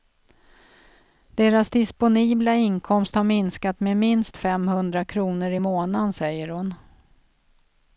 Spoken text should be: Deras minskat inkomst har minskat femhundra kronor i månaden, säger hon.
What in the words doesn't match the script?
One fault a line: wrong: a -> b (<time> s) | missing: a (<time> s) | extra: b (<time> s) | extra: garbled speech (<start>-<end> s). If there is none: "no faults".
wrong: minskat -> disponibla (1.7 s)
extra: med minst (3.8 s)